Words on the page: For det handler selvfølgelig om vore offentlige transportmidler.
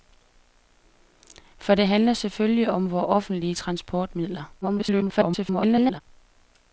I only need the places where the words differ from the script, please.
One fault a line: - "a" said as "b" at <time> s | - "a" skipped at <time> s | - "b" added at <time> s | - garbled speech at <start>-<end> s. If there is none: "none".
- garbled speech at 4.6-6.0 s